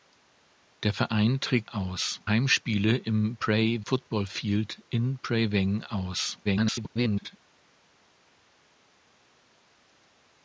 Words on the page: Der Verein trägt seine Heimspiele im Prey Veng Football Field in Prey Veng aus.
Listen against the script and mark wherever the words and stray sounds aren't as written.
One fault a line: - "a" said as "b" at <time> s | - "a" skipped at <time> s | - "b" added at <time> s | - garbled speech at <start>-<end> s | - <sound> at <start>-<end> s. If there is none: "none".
- "seine" said as "aus" at 1.7 s
- "Veng" skipped at 3.8 s
- garbled speech at 6.4-7.4 s